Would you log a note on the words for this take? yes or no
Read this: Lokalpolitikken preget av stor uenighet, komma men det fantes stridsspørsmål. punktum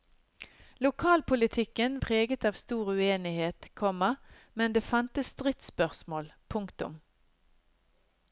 no